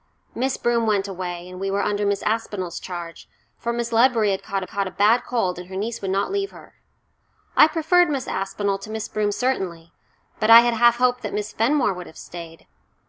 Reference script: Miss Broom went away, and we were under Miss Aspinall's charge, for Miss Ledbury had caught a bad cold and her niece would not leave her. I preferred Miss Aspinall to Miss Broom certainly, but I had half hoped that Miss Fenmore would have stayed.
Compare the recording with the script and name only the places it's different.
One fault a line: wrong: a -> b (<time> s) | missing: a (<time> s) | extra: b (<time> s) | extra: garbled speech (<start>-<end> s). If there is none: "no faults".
extra: caught (4.7 s)